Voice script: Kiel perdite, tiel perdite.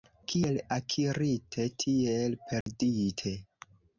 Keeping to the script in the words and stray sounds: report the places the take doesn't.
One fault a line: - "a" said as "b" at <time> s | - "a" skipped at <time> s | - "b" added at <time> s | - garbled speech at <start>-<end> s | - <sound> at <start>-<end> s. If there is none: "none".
- "perdite" said as "akirite" at 0.8 s
- dropout at 2.6-2.7 s